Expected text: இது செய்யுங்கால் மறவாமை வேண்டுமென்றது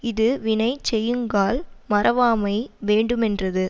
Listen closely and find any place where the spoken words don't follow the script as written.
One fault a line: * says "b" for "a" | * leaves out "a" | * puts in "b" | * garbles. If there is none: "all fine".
* puts in "வினை"